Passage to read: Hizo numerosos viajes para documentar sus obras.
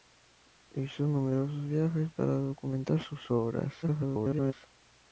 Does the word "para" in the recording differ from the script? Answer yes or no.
no